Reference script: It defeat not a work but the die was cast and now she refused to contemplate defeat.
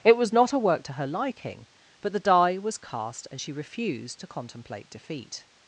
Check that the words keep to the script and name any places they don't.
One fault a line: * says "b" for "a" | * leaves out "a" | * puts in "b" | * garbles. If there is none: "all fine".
* says "was" for "defeat"
* puts in "to her liking"
* leaves out "now"